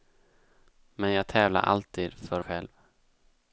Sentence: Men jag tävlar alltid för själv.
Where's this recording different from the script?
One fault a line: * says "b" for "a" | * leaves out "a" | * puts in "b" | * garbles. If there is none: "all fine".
all fine